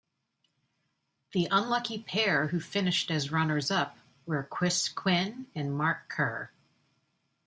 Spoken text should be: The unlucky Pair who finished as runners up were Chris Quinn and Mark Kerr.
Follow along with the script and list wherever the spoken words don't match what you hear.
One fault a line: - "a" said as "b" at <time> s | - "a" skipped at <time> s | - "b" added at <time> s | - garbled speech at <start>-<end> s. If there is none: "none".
none